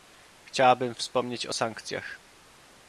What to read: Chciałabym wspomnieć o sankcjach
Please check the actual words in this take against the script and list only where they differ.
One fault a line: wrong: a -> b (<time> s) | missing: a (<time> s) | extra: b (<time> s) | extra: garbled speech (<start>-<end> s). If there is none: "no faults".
no faults